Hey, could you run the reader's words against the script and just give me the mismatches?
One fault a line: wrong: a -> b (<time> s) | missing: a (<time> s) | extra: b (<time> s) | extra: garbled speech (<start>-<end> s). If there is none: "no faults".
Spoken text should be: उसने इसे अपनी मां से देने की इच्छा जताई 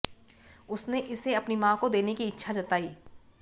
wrong: से -> को (1.8 s)